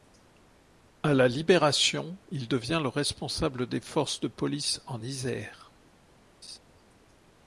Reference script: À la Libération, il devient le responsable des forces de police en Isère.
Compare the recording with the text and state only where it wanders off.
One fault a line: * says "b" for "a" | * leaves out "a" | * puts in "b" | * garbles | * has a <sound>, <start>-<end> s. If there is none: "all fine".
* has a laugh, 6.4-6.6 s